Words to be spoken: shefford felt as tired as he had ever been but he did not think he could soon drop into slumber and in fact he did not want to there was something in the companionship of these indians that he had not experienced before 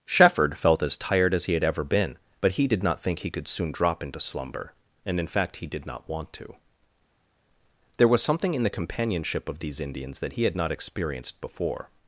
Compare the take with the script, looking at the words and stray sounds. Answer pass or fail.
pass